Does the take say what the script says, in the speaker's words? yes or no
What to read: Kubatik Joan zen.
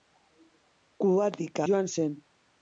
yes